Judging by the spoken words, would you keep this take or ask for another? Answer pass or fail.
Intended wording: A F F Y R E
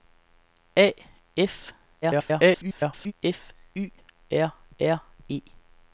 fail